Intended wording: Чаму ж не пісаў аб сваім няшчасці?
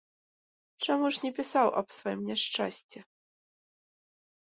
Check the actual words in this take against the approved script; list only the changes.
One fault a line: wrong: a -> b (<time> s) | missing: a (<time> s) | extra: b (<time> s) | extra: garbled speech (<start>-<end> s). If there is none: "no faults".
no faults